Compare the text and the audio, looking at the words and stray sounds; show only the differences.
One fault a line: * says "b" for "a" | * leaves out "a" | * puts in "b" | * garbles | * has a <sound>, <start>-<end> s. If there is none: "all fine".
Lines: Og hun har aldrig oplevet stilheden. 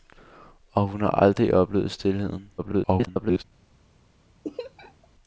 * garbles
* has a laugh, 4.4-5.1 s